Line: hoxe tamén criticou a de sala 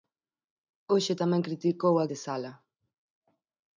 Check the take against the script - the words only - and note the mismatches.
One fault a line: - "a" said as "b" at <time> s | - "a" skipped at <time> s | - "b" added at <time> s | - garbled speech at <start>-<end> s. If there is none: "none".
none